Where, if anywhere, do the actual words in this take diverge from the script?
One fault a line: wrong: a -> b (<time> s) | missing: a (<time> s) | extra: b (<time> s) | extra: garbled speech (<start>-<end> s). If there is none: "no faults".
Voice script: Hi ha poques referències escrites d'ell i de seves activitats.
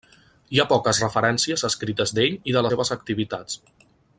no faults